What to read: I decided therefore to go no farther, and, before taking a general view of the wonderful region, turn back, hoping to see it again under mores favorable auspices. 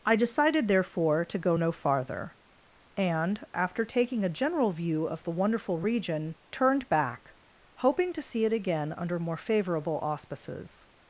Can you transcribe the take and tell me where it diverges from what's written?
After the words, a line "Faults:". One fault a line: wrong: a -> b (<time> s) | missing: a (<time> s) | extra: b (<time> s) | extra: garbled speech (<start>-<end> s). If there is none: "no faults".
I decided therefore to go no farther, and, after taking a general view of the wonderful region, turned back, hoping to see it again under more favorable auspices.
Faults:
wrong: before -> after (3.5 s)
wrong: turn -> turned (6.5 s)
wrong: mores -> more (9.2 s)